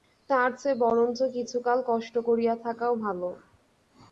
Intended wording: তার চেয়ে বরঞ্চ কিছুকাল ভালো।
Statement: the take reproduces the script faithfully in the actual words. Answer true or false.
false